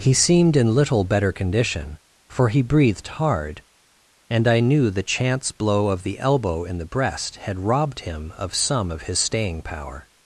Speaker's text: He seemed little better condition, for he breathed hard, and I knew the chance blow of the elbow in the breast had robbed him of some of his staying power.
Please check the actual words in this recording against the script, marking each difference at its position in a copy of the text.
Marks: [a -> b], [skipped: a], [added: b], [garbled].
He seemed [added: in] little better condition, for he breathed hard, and I knew the chance blow of the elbow in the breast had robbed him of some of his staying power.